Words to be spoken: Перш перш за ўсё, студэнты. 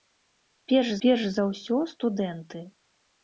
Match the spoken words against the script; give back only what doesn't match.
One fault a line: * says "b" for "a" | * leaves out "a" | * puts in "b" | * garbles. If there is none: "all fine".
all fine